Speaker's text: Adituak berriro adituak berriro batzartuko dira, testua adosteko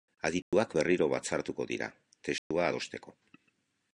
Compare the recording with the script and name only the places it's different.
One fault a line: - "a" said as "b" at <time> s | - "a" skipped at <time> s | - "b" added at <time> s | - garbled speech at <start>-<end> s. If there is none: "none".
- "adituak berriro" skipped at 1.1 s